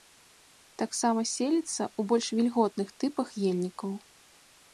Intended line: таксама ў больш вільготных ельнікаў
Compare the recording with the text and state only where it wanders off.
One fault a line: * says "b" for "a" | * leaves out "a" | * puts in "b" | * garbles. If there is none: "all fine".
* puts in "селіцца"
* puts in "тыпах"